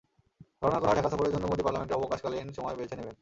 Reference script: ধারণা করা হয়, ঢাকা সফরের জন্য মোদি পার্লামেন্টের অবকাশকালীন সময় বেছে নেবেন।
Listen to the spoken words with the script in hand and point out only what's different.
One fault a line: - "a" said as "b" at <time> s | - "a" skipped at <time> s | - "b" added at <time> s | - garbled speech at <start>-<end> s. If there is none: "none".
none